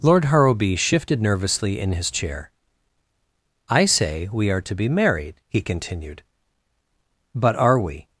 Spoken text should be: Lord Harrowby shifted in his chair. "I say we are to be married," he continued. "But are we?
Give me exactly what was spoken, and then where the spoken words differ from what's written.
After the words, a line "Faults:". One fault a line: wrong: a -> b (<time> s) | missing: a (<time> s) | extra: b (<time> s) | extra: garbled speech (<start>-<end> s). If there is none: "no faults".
Lord Harrowby shifted nervously in his chair. "I say we are to be married," he continued. "But are we?
Faults:
extra: nervously (1.2 s)